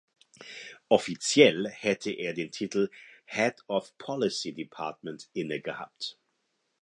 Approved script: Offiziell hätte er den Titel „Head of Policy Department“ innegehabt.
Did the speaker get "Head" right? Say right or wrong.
right